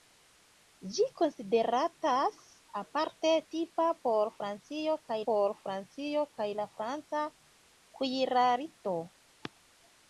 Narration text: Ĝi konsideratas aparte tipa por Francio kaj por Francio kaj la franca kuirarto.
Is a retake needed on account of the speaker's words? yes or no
no